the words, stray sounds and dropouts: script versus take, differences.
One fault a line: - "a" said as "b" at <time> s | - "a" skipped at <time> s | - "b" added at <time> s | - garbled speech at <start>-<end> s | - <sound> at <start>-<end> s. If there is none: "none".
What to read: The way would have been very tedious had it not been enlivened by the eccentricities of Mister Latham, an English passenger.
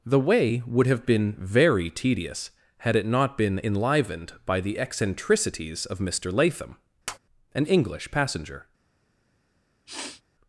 - tap at 7.1-7.2 s
- sniff at 9.9-10.2 s